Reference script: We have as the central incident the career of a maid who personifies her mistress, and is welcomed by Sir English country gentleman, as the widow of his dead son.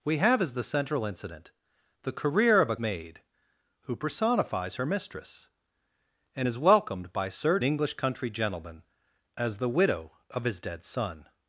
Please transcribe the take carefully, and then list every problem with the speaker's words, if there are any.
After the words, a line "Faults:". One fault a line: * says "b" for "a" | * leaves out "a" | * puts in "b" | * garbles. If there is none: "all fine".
We have as the central incident the career of a maid who personifies her mistress, and is welcomed by Sir English country gentleman, as the widow of his dead son.
Faults:
all fine